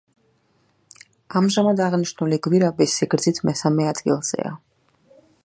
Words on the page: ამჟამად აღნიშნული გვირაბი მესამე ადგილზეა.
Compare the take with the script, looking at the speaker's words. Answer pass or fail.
fail